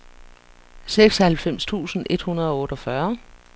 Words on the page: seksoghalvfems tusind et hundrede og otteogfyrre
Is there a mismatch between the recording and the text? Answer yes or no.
no